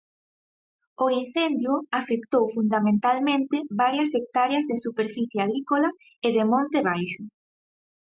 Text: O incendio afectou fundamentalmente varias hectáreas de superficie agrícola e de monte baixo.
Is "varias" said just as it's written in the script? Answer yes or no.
yes